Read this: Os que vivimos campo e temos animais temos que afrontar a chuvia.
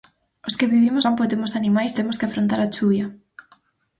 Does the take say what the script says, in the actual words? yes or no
yes